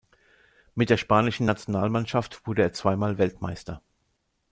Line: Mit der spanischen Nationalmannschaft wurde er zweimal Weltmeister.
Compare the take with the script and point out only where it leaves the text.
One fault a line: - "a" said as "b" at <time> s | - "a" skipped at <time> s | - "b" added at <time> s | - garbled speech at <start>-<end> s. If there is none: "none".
none